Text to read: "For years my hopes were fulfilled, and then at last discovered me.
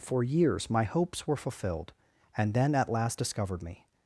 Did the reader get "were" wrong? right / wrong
right